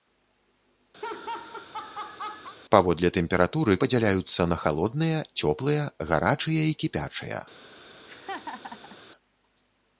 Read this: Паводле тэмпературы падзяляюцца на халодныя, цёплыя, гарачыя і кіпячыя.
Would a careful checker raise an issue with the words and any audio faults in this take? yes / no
yes